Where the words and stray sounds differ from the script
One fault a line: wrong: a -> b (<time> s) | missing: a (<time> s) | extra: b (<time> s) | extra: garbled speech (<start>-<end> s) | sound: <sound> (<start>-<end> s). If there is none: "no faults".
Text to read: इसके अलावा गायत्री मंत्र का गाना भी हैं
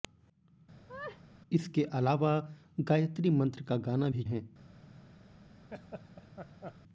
sound: laugh (0.9-1.2 s)
sound: laugh (5.7-6.8 s)